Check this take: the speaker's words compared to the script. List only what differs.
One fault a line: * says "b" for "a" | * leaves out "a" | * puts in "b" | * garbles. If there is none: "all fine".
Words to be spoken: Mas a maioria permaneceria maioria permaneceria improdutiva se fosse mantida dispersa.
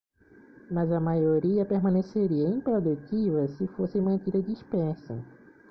* leaves out "maioria permaneceria"